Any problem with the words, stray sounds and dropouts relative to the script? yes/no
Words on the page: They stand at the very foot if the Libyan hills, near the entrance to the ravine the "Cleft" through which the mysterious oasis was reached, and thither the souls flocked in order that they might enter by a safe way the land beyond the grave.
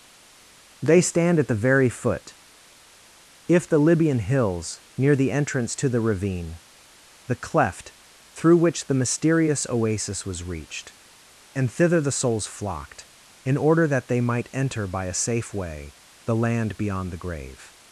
no